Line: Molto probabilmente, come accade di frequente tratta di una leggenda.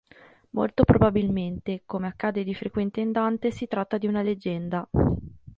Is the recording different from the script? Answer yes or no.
yes